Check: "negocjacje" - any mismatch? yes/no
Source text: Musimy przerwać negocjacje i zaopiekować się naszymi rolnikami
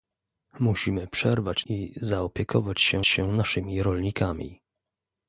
yes